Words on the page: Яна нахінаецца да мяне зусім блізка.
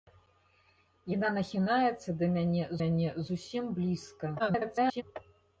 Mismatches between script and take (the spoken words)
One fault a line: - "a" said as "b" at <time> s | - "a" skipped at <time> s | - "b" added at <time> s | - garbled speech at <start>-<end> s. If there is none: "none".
- "мяне" added at 2.8 s
- garbled speech at 4.4-5.0 s